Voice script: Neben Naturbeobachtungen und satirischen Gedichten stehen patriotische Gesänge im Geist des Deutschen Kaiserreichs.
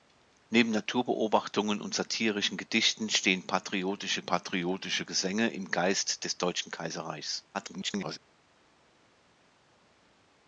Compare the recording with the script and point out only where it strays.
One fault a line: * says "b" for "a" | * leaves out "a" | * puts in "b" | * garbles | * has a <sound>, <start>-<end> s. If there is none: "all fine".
* puts in "patriotische"
* garbles